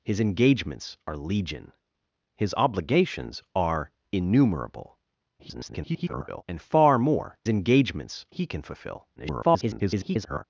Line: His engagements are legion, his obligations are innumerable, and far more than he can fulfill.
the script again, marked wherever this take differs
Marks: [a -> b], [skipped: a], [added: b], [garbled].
His engagements are legion, his obligations are innumerable, [garbled] and far more [than -> engagements] he can fulfill. [garbled]